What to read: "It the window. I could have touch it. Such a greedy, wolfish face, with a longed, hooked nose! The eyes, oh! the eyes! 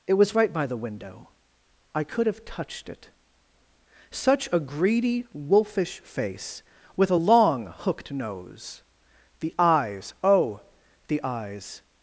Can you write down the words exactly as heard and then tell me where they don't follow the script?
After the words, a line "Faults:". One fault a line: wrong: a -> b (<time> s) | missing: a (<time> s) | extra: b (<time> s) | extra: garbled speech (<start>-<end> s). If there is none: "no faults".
"It was right by the window. I could have touched it. Such a greedy, wolfish face, with a long, hooked nose! The eyes, oh! the eyes!
Faults:
extra: was right by (0.1 s)
wrong: touch -> touched (2.5 s)
wrong: longed -> long (7.1 s)